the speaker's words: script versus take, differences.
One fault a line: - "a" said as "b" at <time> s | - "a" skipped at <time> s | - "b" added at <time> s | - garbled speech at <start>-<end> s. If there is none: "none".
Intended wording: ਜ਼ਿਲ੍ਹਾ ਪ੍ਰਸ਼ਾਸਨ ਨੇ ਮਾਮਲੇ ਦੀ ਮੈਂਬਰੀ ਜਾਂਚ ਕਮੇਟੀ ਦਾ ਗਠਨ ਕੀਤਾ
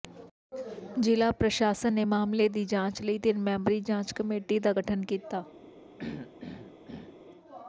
- "ਜਾਂਚ ਲਈ ਤਿੰਨ" added at 2.6 s